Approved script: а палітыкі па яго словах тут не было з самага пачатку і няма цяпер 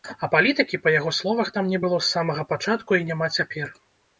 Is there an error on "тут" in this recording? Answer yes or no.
yes